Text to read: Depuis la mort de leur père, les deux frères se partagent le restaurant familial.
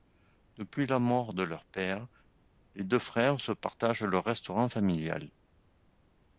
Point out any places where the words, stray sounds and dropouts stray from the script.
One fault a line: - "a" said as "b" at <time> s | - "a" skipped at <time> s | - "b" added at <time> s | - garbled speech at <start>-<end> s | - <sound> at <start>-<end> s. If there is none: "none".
none